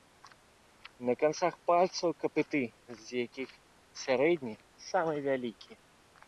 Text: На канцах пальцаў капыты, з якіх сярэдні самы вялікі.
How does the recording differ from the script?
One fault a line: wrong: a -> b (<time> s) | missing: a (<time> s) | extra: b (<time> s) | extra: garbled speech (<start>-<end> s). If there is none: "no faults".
no faults